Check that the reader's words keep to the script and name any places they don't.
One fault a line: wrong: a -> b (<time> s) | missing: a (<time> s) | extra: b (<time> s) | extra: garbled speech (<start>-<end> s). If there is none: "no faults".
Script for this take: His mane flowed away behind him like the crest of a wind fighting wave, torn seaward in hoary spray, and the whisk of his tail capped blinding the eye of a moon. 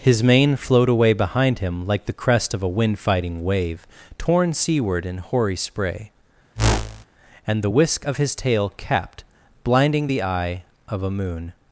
no faults